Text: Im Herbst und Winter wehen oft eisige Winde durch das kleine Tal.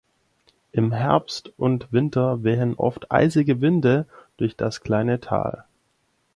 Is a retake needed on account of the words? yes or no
no